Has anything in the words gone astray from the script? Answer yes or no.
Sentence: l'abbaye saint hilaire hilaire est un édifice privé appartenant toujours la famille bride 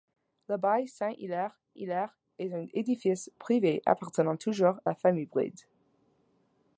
no